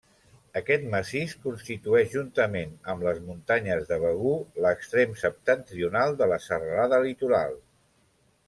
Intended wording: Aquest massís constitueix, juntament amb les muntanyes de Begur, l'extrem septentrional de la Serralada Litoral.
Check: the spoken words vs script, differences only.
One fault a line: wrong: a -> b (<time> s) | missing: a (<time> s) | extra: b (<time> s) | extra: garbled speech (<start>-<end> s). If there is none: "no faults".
no faults